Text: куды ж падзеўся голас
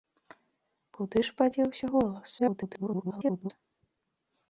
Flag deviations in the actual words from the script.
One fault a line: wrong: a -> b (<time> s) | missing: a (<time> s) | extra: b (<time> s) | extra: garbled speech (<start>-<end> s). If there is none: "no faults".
extra: garbled speech (2.4-3.5 s)